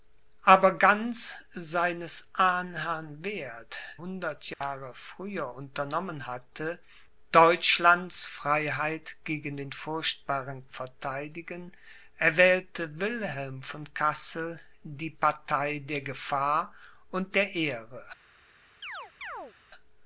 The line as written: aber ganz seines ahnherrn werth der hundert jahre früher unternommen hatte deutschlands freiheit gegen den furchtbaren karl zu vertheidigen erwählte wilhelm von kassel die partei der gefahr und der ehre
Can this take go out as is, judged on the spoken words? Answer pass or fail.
fail